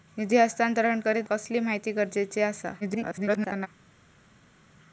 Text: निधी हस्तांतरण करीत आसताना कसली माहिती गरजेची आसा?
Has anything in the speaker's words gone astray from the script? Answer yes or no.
yes